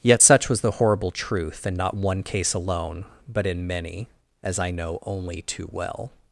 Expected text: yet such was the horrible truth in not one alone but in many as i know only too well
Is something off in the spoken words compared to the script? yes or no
yes